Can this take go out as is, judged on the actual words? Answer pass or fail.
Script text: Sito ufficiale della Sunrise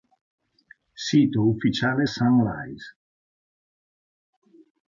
fail